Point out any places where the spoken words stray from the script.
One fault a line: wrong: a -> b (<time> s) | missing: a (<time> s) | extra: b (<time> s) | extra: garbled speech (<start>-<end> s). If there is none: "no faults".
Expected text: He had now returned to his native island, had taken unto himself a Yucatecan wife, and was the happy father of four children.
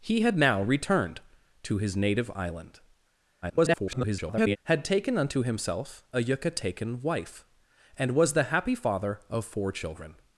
extra: garbled speech (3.4-4.6 s)